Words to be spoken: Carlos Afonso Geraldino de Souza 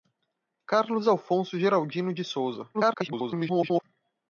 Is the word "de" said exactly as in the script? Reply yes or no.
yes